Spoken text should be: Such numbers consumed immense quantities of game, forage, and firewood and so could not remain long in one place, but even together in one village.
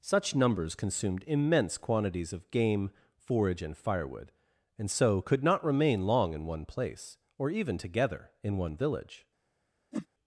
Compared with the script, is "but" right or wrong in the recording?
wrong